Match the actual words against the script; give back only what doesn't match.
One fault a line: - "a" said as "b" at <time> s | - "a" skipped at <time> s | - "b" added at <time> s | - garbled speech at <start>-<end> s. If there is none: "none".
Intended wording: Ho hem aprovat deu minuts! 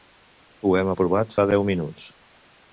- "fa" added at 1.4 s